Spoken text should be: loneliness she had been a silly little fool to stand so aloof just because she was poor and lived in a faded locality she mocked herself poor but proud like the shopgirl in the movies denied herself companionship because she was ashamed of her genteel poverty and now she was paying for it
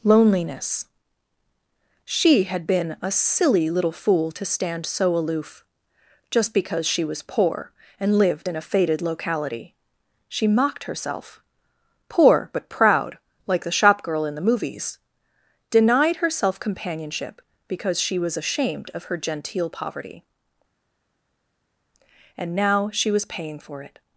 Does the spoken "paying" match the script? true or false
true